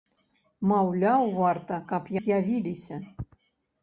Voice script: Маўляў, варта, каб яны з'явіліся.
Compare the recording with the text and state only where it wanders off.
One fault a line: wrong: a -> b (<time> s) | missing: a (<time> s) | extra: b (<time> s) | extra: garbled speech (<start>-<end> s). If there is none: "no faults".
missing: яны (2.0 s)